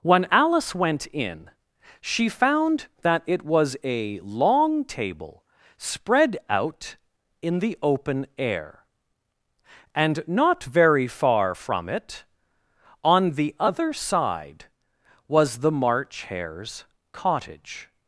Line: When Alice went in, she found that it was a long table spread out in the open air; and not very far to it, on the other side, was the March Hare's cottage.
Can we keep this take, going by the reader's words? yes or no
no